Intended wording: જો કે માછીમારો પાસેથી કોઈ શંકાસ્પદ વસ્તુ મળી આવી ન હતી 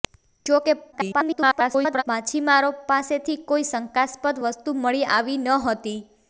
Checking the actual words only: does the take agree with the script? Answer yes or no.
no